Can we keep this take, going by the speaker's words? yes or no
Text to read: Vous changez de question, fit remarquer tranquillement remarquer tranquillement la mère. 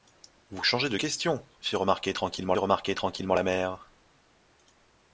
yes